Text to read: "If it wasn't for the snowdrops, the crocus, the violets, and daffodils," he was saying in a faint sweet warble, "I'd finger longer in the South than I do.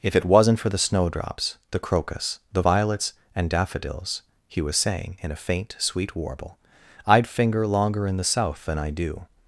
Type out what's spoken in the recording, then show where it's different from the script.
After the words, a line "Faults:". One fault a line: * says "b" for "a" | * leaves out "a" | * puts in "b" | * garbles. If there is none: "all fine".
"If it wasn't for the snowdrops, the crocus, the violets, and daffodils," he was saying in a faint sweet warble, "I'd finger longer in the South than I do.
Faults:
all fine